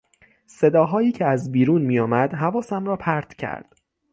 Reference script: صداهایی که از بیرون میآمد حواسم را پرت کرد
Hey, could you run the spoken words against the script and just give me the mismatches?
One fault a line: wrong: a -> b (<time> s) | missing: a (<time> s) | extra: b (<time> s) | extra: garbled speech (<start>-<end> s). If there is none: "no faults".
no faults